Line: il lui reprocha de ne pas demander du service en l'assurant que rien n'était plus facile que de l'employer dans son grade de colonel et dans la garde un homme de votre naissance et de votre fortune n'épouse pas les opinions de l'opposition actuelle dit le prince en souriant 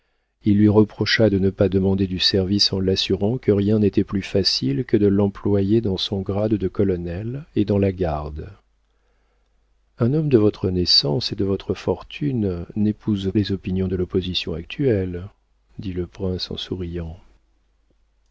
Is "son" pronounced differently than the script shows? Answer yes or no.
no